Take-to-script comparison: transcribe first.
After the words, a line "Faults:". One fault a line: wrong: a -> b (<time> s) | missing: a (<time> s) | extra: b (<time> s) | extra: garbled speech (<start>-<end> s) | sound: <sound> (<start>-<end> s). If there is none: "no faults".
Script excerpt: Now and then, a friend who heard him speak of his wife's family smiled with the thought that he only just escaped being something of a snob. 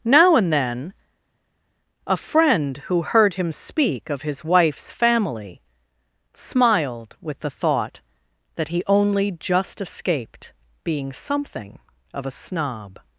Now and then, a friend who heard him speak of his wife's family smiled with the thought that he only just escaped being something of a snob.
Faults:
no faults